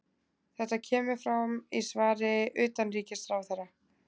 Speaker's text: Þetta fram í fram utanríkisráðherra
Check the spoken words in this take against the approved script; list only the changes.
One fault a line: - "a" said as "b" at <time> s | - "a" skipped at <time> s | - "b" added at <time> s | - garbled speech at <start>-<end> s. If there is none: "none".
- "kemur" added at 0.9 s
- "fram" said as "svari" at 1.9 s